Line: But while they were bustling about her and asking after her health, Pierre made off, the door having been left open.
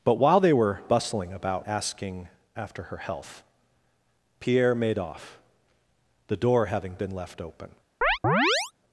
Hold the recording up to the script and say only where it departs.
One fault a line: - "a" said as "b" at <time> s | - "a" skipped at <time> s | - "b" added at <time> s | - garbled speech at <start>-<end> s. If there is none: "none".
- "her and" skipped at 1.7 s